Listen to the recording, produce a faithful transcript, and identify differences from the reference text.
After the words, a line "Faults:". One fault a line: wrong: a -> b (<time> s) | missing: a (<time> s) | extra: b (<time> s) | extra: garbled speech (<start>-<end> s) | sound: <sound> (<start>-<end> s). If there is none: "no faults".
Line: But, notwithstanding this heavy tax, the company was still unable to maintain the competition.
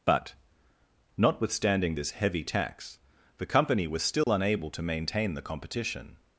But, notwithstanding this heavy tax, the company was still unable to maintain the competition.
Faults:
sound: dropout (4.2-4.3 s)